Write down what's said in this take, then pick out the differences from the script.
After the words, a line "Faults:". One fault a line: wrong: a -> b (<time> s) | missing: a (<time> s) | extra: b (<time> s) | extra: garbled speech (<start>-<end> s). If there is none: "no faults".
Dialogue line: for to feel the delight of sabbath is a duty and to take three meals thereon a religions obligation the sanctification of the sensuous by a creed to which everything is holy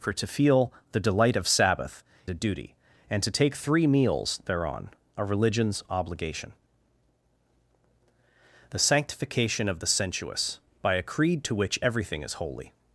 for to feel the delight of sabbath a duty and to take three meals thereon a religions obligation the sanctification of the sensuous by a creed to which everything is holy
Faults:
missing: is (2.0 s)